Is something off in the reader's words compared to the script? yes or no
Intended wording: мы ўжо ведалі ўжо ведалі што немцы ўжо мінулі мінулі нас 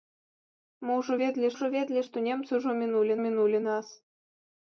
no